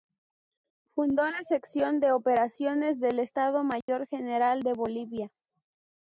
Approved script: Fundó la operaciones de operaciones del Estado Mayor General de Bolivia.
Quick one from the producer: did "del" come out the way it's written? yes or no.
yes